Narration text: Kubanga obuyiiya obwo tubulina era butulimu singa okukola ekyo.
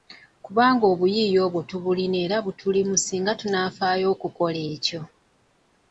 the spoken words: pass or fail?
fail